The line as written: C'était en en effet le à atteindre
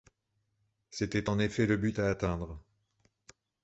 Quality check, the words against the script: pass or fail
fail